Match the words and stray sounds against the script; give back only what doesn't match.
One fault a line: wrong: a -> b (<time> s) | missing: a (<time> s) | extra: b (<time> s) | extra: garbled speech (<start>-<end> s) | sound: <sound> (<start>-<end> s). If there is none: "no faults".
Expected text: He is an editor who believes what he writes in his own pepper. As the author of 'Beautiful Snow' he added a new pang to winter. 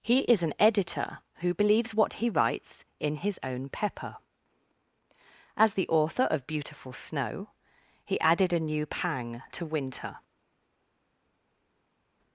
no faults